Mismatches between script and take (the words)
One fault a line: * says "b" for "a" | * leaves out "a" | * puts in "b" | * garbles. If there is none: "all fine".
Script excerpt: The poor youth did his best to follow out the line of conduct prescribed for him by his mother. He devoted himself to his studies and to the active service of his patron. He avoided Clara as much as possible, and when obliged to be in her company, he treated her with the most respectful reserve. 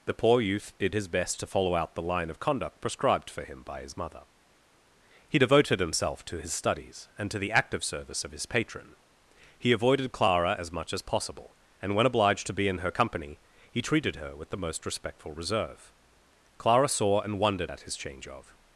* puts in "Clara saw and wondered at his change of"